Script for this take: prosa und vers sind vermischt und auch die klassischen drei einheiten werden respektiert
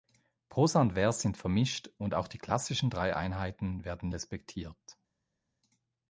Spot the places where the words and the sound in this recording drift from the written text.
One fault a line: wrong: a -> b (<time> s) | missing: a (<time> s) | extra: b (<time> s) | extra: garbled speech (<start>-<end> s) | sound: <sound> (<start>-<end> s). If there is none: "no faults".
no faults